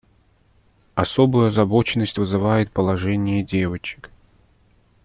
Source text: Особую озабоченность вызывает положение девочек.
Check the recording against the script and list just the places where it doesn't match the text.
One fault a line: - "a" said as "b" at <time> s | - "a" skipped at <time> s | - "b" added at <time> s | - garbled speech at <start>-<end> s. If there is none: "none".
none